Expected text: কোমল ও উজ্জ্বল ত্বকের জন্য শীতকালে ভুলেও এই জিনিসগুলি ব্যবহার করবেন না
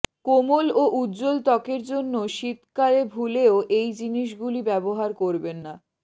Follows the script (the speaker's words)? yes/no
yes